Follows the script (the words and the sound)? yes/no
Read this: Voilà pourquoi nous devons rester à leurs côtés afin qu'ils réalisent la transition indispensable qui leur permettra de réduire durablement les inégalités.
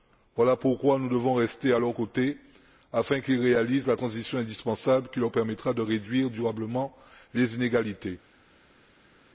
yes